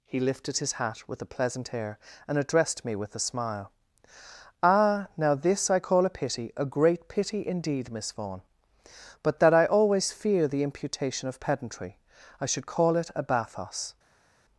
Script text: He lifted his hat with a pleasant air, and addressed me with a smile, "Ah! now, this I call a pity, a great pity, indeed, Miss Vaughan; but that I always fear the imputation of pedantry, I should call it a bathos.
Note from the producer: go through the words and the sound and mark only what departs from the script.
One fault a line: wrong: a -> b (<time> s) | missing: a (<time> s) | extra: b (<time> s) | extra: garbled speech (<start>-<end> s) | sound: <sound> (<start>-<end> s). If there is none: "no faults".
no faults